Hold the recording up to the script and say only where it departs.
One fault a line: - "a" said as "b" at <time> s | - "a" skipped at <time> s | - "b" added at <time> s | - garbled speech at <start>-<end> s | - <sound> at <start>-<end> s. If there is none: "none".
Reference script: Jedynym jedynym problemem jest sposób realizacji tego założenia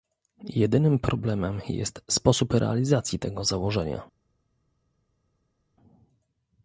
- "jedynym" skipped at 1.0 s